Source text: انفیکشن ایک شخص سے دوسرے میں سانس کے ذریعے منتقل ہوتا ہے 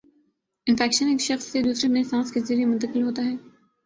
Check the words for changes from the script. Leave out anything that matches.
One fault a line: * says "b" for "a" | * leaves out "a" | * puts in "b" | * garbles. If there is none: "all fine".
all fine